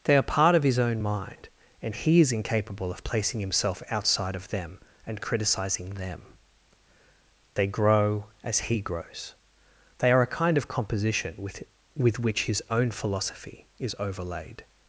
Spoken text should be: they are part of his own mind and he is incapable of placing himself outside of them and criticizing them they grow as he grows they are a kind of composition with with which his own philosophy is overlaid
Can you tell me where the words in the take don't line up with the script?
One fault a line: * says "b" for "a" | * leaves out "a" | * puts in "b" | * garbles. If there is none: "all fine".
all fine